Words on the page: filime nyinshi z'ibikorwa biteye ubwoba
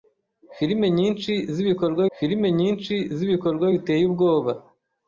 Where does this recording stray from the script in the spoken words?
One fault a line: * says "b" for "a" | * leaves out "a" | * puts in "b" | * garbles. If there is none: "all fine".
* puts in "filime nyinshi z'ibikorwa"